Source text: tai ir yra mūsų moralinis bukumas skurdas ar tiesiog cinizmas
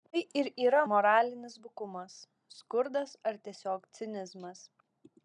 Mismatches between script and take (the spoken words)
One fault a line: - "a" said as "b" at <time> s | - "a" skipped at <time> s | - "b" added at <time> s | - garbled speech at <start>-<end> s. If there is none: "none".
- "mūsų" skipped at 0.8 s